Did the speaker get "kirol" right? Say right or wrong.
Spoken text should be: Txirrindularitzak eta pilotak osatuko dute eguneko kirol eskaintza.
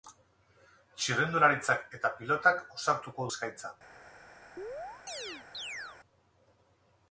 wrong